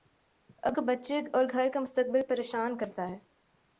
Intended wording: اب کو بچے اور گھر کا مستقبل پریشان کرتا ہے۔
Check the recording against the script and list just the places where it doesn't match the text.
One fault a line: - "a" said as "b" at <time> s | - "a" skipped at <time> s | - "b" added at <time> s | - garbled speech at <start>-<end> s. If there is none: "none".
none